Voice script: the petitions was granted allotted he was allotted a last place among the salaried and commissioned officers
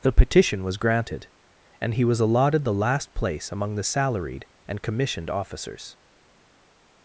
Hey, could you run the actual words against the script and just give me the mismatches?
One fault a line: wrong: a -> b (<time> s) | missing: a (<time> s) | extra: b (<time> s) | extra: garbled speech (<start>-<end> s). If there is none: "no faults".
wrong: petitions -> petition (0.1 s)
wrong: allotted -> and (1.8 s)
wrong: a -> the (2.6 s)